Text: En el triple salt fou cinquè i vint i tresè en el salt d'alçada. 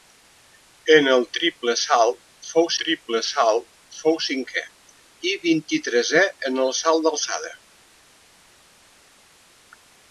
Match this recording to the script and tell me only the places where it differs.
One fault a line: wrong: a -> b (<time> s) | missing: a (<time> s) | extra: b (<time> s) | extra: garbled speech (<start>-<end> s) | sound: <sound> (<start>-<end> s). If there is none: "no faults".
extra: triple salt fou (2.8 s)